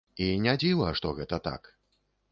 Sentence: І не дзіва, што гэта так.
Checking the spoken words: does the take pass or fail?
pass